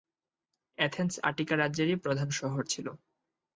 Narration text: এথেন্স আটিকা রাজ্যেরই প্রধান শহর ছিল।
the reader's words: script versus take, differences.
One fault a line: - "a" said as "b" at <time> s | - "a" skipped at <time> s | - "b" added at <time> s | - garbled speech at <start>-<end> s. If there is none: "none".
none